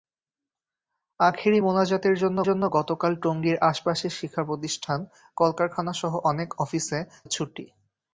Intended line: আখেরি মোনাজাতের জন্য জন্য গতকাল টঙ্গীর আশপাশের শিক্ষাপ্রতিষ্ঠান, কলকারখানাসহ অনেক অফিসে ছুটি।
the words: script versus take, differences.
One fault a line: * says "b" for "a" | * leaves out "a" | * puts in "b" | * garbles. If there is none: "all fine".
all fine